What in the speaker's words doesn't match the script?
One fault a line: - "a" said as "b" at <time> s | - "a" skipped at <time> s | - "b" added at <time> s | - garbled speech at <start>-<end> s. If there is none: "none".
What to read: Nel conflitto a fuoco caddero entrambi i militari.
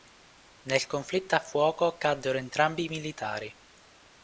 none